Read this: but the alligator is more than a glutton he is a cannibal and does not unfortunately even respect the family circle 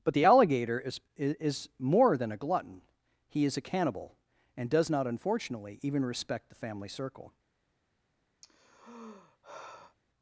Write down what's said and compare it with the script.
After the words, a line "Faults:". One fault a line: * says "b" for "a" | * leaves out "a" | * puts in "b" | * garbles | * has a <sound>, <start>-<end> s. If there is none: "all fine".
but the alligator is is more than a glutton he is a cannibal and does not unfortunately even respect the family circle
Faults:
* puts in "is"
* has a sigh, 8.4-10.0 s